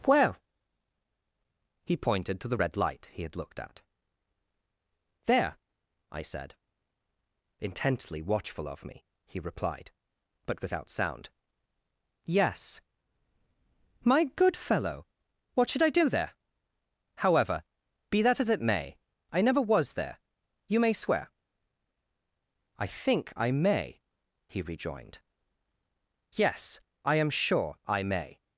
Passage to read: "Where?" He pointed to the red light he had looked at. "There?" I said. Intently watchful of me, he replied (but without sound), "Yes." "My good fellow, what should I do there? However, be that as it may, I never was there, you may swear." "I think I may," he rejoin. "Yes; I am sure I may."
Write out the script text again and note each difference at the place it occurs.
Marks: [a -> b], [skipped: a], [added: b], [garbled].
"Where?" He pointed to the red light he had looked at. "There?" I said. Intently watchful of me, he replied (but without sound), "Yes." "My good fellow, what should I do there? However, be that as it may, I never was there, you may swear." "I think I may," he [rejoin. -> rejoined] "Yes; I am sure I may."